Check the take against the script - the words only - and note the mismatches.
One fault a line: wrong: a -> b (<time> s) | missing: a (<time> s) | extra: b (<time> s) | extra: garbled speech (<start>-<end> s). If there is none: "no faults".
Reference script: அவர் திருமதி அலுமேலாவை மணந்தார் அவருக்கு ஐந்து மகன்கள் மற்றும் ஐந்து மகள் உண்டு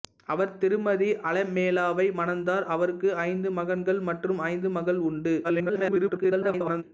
extra: garbled speech (5.4-6.8 s)